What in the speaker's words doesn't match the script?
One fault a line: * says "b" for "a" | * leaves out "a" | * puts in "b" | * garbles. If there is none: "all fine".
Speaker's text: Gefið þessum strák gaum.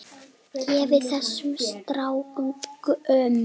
all fine